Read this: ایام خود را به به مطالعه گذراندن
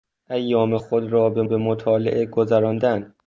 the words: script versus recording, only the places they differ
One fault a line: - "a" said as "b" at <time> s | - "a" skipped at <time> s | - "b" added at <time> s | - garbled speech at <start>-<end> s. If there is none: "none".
none